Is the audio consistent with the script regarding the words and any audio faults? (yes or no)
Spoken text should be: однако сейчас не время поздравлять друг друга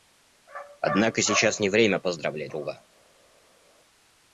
no